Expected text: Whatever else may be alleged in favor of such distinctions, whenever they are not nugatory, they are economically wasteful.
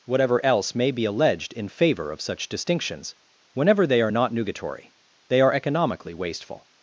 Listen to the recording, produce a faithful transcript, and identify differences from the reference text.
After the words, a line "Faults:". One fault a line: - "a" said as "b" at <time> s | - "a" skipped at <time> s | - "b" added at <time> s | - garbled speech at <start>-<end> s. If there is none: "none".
Whatever else may be alleged in favor of such distinctions, whenever they are not nugatory, they are economically wasteful.
Faults:
none